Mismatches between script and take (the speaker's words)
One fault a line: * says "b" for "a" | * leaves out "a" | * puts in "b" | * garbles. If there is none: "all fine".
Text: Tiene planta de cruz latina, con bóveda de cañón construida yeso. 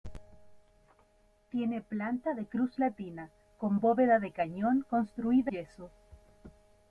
all fine